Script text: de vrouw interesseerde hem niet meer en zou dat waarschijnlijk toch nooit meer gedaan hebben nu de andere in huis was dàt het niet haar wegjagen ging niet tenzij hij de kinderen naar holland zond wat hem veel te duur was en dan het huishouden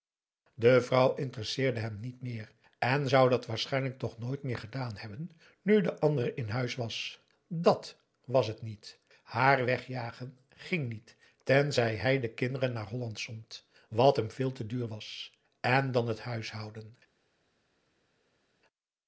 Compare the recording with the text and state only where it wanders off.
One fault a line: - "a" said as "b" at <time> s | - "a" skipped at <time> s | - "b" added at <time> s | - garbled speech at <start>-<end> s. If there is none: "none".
- "was" added at 8.2 s